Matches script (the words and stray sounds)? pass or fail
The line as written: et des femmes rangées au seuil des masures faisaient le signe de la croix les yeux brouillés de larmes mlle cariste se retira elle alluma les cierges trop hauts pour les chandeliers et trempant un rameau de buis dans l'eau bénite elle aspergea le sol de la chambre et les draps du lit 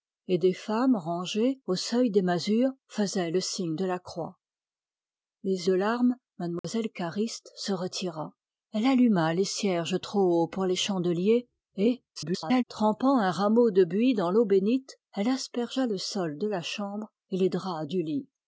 fail